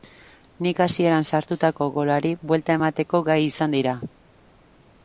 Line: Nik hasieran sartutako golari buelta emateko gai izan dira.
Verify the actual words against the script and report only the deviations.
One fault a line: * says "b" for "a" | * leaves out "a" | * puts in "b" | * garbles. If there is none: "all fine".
all fine